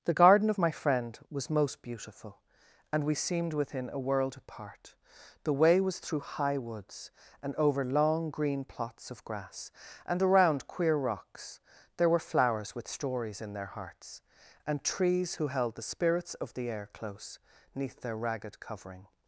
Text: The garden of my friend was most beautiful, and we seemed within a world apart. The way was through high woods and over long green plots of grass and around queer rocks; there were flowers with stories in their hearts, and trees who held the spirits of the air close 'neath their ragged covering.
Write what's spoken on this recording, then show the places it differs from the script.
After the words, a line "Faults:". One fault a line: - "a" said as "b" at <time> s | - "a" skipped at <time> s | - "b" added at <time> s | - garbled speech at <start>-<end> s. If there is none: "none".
The garden of my friend was most beautiful, and we seemed within a world apart. The way was through high woods and over long green plots of grass and around queer rocks; there were flowers with stories in their hearts, and trees who held the spirits of the air close 'neath their ragged covering.
Faults:
none